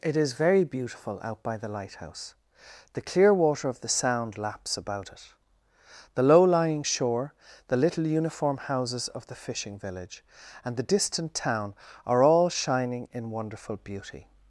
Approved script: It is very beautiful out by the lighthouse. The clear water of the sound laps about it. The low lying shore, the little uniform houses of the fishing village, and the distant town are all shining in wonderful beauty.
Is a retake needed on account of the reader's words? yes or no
no